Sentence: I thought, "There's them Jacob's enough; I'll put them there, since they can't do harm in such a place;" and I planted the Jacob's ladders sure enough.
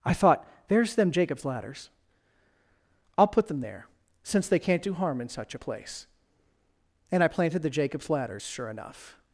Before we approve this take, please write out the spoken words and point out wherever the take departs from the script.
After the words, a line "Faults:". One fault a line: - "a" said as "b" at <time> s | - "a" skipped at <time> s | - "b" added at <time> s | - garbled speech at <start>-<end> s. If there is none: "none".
I thought, "There's them Jacob's ladders; I'll put them there, since they can't do harm in such a place;" and I planted the Jacob's ladders sure enough.
Faults:
- "enough" said as "ladders" at 1.4 s